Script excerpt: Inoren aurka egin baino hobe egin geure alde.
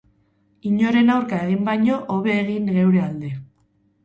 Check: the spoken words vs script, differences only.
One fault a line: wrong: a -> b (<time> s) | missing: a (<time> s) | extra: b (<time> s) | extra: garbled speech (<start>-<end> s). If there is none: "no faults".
no faults